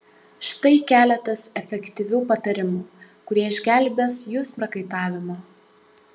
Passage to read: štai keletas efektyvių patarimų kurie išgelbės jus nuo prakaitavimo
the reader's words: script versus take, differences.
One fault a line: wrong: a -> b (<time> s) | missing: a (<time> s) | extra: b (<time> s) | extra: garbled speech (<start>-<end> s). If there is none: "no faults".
missing: nuo (4.6 s)